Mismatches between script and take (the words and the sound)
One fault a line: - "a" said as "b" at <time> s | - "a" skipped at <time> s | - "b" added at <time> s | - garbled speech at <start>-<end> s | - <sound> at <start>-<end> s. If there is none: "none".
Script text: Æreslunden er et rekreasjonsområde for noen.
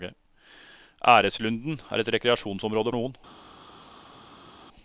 - "for" skipped at 2.9 s